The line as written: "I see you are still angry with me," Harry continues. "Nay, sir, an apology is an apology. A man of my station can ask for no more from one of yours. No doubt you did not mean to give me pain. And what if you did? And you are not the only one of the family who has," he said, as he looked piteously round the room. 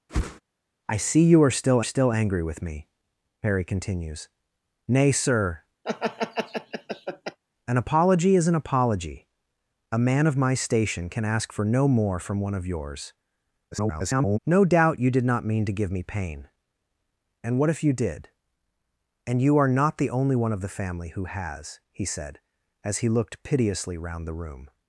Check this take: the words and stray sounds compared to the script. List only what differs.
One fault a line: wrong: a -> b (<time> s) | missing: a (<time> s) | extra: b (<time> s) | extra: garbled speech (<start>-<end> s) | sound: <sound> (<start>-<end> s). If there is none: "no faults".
sound: whoosh (0.1-0.4 s)
extra: still (1.8 s)
sound: laugh (5.8-7.4 s)
extra: garbled speech (13.7-14.4 s)